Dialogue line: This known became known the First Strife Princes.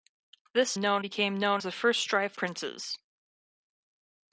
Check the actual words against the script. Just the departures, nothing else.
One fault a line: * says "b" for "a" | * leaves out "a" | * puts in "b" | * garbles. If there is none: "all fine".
all fine